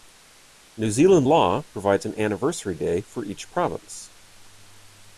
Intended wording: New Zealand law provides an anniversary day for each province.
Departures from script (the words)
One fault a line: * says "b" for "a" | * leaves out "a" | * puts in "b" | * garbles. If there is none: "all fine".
all fine